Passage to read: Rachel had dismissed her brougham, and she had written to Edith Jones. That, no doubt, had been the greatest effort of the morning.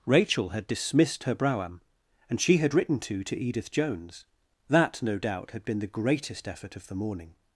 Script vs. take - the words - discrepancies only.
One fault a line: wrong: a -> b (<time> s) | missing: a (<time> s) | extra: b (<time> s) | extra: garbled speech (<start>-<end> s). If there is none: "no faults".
extra: to (3.2 s)